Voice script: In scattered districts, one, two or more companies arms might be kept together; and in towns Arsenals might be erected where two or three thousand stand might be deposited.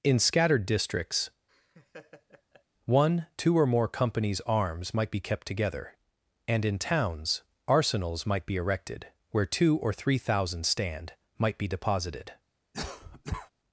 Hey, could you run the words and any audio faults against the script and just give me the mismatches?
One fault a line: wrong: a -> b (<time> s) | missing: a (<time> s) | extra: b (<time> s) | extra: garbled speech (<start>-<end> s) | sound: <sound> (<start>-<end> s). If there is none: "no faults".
sound: laugh (1.5-2.6 s)
sound: cough (12.7-13.5 s)